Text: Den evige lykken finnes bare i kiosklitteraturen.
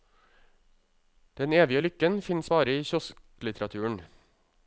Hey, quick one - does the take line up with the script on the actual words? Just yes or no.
yes